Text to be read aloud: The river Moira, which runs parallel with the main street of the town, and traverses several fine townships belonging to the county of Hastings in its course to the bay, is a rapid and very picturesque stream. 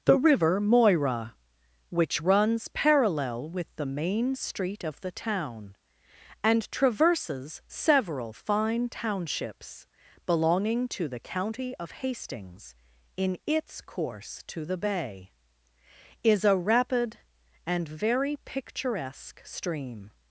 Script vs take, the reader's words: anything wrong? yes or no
no